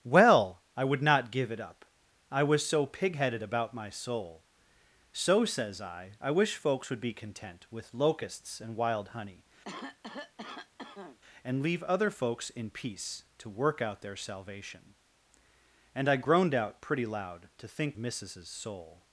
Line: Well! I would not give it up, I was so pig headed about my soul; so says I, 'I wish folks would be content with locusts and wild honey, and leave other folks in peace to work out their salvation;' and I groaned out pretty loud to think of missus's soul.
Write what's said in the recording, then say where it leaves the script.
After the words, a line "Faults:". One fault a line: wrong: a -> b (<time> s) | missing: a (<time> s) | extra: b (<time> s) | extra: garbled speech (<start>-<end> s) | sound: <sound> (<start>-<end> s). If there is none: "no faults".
Well! I would not give it up, I was so pig headed about my soul; so says I, 'I wish folks would be content with locusts and wild honey, and leave other folks in peace to work out their salvation;' and I groaned out pretty loud to think missus's soul.
Faults:
sound: cough (9.6-11.2 s)
missing: of (18.0 s)